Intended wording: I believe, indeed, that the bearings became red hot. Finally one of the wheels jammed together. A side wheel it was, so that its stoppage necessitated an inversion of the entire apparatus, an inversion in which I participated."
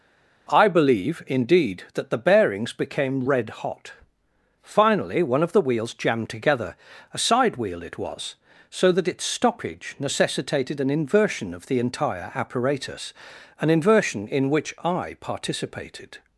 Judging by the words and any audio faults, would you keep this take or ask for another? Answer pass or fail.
pass